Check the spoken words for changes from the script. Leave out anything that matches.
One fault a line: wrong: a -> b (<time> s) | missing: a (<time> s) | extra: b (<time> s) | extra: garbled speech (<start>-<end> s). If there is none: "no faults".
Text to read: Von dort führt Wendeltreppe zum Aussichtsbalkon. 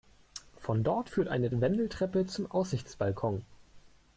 extra: eine (1.3 s)